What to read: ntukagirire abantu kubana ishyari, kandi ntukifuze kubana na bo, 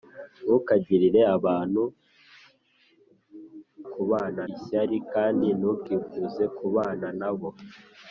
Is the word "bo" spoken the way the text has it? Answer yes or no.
yes